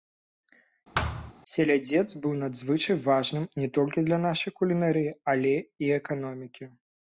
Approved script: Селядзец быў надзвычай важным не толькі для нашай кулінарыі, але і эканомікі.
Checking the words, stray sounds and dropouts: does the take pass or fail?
fail